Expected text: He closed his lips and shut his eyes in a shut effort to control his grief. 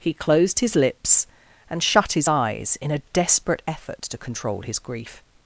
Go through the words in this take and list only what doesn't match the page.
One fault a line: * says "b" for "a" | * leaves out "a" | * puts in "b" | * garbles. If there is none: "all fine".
* says "desperate" for "shut"